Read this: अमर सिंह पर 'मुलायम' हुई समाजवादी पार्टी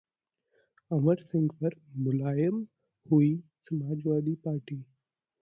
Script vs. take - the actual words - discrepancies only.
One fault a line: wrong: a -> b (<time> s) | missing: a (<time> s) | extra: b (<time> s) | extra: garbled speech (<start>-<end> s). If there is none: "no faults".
no faults